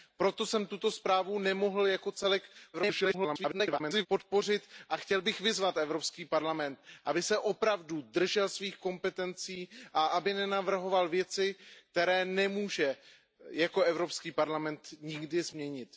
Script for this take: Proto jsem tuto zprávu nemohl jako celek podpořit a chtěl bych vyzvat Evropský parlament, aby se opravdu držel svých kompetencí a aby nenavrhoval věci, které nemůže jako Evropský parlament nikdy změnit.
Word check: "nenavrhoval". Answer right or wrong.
right